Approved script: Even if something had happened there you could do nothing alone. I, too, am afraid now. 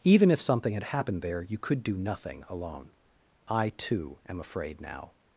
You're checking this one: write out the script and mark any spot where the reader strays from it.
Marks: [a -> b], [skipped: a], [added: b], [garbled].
Even if something had happened there you could do nothing alone. I, too, am afraid now.